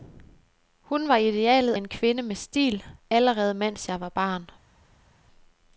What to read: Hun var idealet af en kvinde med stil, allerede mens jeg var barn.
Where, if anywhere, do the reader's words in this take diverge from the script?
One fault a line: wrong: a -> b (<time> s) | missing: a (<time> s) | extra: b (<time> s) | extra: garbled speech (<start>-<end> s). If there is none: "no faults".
missing: af (1.7 s)